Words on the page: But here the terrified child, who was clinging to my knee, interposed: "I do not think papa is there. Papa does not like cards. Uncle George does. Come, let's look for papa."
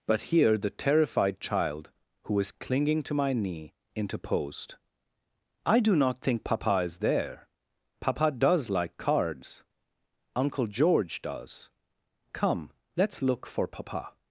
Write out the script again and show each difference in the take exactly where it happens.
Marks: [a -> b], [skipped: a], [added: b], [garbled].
But here the terrified child, who was clinging to my knee, interposed: "I do not think papa is there. Papa does [skipped: not] like cards. Uncle George does. Come, let's look for papa."